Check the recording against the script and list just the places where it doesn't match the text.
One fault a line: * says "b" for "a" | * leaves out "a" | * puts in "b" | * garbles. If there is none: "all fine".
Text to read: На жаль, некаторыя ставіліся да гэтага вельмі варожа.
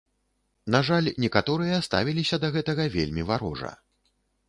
all fine